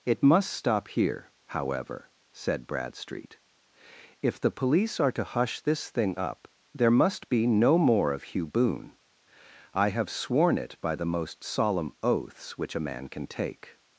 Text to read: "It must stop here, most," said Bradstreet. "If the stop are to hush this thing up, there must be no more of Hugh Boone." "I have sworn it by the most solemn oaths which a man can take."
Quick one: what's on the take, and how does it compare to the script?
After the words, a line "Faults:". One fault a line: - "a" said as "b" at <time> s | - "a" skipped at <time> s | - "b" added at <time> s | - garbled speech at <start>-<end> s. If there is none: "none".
"It must stop here, however," said Bradstreet. "If the police are to hush this thing up, there must be no more of Hugh Boone." "I have sworn it by the most solemn oaths which a man can take."
Faults:
- "most" said as "however" at 1.5 s
- "stop" said as "police" at 4.5 s